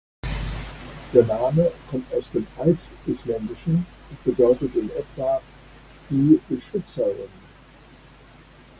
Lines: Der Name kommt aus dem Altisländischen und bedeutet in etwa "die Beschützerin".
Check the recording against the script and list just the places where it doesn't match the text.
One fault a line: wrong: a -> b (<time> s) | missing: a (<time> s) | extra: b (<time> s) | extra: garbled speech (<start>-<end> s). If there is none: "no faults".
no faults